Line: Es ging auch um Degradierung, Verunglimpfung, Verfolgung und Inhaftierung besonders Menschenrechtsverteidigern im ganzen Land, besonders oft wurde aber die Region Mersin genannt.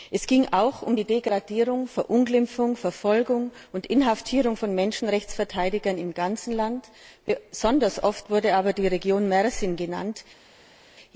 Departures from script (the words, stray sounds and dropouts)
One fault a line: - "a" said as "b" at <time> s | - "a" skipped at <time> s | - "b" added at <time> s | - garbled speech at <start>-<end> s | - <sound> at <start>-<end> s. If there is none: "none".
- "die" added at 0.9 s
- "besonders" said as "von" at 4.6 s